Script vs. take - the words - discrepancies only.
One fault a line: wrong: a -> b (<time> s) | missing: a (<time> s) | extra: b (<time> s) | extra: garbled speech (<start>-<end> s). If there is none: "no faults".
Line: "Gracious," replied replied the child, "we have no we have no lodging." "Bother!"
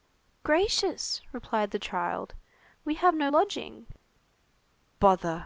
missing: replied (1.7 s)
missing: we have no (3.3 s)